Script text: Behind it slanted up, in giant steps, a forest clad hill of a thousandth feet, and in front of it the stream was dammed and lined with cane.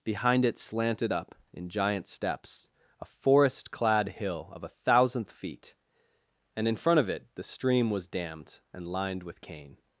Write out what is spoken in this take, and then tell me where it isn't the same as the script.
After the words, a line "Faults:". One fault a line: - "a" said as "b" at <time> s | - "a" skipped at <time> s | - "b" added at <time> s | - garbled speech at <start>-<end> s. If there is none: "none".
Behind it slanted up, in giant steps, a forest clad hill of a thousandth feet, and in front of it the stream was dammed and lined with cane.
Faults:
none